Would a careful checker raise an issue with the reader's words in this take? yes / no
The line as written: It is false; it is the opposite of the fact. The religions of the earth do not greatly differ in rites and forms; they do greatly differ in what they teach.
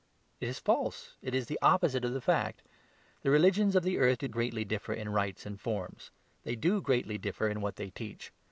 yes